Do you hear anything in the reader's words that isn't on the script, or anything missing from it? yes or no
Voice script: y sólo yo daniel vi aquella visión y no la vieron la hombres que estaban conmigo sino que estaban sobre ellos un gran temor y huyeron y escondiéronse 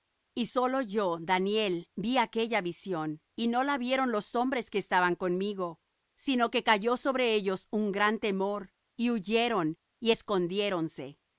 yes